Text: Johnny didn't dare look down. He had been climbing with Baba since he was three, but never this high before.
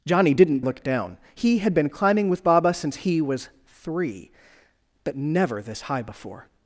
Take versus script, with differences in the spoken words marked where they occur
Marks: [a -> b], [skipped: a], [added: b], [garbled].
Johnny didn't [skipped: dare] look down. He had been climbing with Baba since he was three, but never this high before.